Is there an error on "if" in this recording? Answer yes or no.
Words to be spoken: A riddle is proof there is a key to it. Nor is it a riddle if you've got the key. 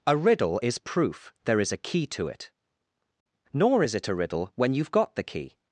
yes